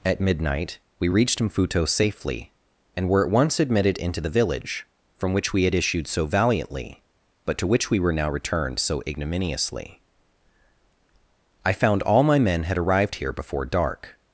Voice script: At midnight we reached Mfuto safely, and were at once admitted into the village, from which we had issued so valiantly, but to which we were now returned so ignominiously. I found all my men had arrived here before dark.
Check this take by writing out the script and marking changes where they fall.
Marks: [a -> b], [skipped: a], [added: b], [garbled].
At midnight we reached Mfuto safely, and were at once admitted into the village, from which we had issued so valiantly, but to which we were now returned so ignominiously. I found all my men had arrived here before dark.